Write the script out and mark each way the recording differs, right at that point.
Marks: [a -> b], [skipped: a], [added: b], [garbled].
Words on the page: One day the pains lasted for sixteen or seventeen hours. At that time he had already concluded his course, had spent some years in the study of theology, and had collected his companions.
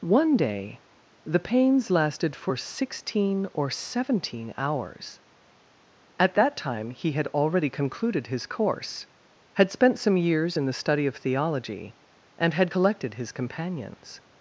One day the pains lasted for sixteen or seventeen hours. At that time he had already concluded his course, had spent some years in the study of theology, and had collected his companions.